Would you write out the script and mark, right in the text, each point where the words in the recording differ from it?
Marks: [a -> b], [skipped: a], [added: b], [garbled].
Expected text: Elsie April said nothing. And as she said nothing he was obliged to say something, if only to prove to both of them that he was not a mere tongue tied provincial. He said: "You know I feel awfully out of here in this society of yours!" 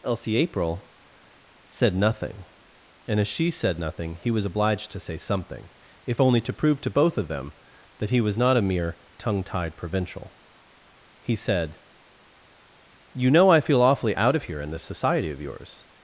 Elsie April said nothing. And as she said nothing he was obliged to say something, if only to prove to both of them that he was not a mere tongue tied provincial. He said: "You know I feel awfully out of here in this society of yours!"